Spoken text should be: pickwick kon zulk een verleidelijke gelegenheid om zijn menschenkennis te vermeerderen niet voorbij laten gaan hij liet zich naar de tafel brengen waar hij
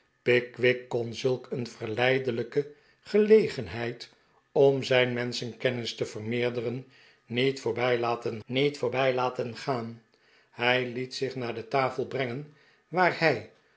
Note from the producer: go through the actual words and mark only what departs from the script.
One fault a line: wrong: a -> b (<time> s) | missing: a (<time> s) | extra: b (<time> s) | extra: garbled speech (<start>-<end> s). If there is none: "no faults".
extra: niet voorbij laten (8.4 s)